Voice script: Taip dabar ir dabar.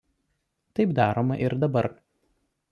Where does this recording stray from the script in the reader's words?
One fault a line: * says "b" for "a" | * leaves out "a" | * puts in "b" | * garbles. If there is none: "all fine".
* says "daroma" for "dabar"